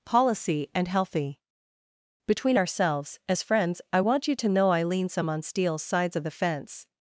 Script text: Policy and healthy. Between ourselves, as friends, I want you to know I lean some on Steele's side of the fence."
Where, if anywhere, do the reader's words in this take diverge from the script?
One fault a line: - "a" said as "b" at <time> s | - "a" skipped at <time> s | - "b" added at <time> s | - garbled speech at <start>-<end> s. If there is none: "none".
- "side" said as "sides" at 5.8 s